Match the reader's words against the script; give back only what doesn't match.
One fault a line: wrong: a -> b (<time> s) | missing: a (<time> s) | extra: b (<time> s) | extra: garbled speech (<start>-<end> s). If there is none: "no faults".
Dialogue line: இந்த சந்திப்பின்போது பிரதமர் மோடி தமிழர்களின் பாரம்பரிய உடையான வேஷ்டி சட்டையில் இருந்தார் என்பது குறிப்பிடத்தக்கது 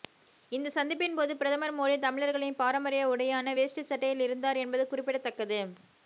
no faults